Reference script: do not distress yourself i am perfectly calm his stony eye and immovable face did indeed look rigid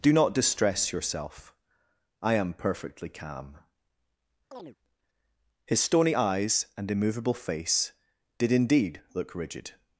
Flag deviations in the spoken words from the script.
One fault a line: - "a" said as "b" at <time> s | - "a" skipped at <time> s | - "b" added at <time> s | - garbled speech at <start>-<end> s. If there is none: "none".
- "eye" said as "eyes" at 6.1 s